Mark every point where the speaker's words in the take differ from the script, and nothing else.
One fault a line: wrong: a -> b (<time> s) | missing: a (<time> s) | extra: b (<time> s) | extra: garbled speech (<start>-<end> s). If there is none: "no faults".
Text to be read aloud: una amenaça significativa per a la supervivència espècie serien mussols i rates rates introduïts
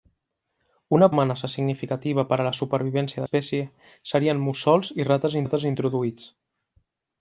no faults